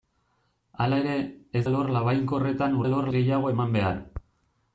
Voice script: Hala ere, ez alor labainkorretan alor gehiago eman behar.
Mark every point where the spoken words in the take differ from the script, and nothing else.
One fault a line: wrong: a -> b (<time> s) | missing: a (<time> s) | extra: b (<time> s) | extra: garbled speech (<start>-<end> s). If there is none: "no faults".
no faults